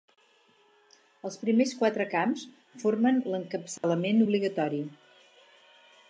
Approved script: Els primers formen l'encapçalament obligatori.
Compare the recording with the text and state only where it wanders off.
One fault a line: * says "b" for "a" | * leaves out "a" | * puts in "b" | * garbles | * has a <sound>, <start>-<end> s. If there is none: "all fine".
* puts in "quatre camps"
* has a dropout, 3.8-3.8 s